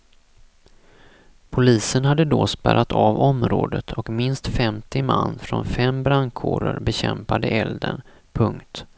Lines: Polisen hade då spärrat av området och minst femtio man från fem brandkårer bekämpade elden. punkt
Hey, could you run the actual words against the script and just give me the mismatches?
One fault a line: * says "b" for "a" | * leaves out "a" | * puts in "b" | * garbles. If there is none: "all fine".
all fine